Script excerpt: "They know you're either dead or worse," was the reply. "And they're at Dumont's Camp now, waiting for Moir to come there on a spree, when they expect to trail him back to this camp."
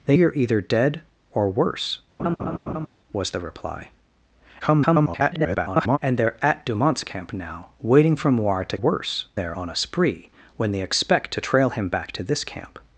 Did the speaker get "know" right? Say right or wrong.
wrong